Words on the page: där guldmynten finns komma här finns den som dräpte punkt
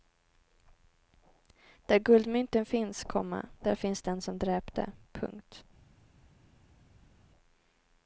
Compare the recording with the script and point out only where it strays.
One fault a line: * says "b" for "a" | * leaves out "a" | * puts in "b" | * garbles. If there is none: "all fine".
* says "där" for "här"